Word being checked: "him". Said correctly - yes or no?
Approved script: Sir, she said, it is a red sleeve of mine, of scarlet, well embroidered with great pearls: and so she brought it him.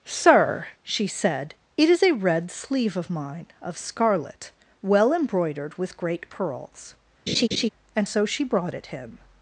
yes